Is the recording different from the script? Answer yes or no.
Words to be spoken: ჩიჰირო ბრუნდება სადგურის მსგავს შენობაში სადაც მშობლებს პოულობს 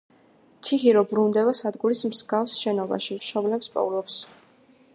yes